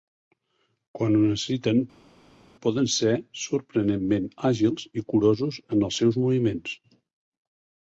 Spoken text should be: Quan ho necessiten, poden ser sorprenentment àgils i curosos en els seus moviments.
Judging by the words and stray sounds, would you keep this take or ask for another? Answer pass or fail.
pass